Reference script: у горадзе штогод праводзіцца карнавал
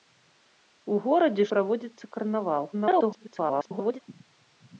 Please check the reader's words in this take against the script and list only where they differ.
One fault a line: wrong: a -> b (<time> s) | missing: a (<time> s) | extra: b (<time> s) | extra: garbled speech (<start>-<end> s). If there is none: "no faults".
missing: штогод (1.4 s)
extra: garbled speech (2.7-4.0 s)